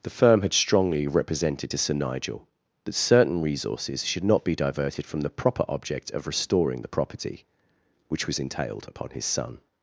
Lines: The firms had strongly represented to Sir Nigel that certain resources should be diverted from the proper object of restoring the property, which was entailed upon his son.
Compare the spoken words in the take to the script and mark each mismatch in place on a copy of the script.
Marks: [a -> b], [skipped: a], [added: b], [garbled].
The [firms -> firm] had strongly represented to Sir Nigel that certain resources should [added: not] be diverted from the proper object of restoring the property, which was entailed upon his son.